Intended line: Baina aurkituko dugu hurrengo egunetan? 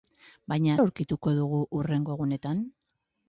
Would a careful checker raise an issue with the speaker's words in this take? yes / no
no